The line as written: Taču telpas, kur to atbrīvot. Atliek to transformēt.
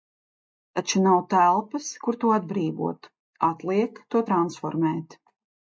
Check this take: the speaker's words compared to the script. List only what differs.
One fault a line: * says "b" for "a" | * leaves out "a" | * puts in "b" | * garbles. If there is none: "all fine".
* puts in "nav"